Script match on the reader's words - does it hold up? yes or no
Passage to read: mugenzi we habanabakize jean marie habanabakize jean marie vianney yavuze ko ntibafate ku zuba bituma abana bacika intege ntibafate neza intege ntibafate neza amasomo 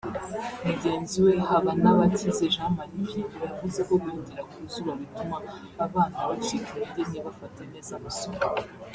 no